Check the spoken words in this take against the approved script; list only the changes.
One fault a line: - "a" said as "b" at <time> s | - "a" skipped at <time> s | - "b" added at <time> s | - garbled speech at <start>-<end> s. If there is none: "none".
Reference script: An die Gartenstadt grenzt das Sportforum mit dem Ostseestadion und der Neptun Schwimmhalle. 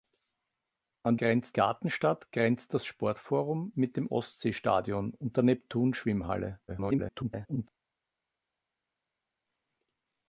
- "die" said as "grenzt" at 1.2 s
- garbled speech at 6.7-7.7 s